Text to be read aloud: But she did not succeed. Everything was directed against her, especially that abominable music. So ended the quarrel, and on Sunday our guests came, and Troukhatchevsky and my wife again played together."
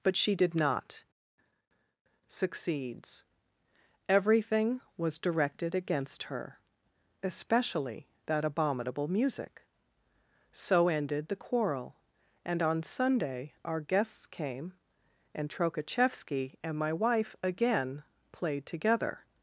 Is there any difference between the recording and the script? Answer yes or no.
yes